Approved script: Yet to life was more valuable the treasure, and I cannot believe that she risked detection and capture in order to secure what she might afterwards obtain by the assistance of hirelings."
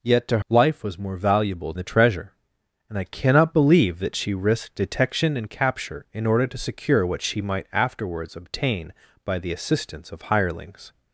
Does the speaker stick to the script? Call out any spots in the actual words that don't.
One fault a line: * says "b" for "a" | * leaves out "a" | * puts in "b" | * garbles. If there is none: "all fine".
all fine